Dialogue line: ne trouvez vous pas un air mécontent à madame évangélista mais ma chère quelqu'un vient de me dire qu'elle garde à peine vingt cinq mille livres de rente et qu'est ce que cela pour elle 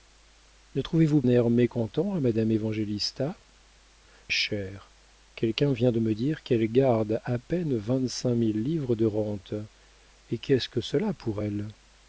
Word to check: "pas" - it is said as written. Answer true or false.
false